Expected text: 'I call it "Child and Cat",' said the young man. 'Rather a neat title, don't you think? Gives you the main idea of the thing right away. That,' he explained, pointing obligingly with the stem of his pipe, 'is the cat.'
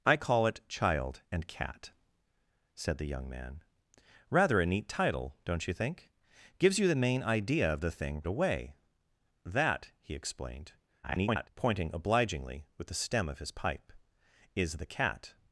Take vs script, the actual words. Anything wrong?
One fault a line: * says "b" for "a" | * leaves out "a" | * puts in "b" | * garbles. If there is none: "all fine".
* leaves out "right"
* garbles